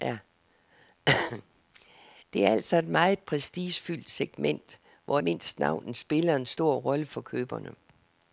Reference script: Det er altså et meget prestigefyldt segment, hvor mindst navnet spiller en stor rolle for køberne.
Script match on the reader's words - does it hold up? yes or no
yes